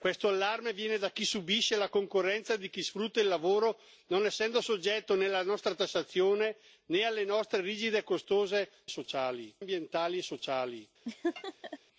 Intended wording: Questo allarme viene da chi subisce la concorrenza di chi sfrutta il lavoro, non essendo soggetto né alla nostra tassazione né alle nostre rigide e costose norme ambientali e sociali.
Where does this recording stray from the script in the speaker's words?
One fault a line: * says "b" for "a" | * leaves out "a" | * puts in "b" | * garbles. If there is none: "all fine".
* says "sociali" for "norme"